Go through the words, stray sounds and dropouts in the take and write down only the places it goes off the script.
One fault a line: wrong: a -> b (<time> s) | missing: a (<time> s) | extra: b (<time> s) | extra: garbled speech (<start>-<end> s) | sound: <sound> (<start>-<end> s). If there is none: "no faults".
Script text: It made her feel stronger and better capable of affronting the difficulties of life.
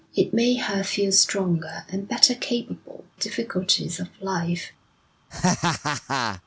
missing: of affronting the (3.0 s)
sound: laugh (5.3-6.4 s)